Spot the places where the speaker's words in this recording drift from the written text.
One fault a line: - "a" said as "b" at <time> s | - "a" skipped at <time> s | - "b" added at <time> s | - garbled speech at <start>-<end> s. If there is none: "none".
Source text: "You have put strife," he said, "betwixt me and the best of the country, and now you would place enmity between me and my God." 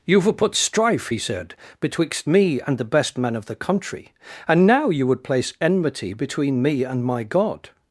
- "men" added at 3.2 s